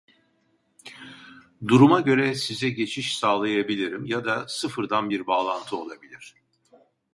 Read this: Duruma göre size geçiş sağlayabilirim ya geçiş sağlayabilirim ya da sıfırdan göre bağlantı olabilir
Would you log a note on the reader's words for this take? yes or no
yes